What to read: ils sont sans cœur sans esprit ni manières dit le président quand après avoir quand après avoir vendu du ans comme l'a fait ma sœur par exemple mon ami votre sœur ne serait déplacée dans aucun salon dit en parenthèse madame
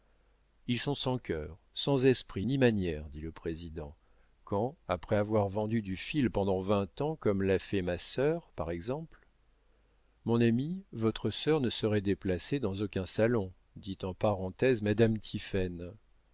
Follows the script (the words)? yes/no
no